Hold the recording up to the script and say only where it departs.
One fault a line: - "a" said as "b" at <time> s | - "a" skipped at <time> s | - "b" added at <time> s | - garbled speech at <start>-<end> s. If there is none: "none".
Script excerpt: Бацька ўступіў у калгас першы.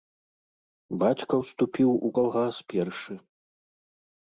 none